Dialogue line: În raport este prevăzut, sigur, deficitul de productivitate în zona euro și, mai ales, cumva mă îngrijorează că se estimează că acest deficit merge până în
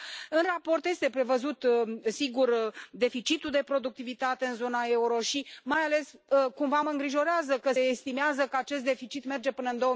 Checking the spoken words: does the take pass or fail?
fail